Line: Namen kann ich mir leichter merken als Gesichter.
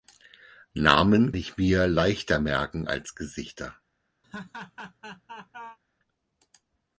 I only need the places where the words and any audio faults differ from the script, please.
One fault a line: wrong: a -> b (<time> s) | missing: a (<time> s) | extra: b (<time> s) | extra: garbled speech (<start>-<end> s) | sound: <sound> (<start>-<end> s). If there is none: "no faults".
missing: kann (1.4 s)
sound: laugh (4.2-5.8 s)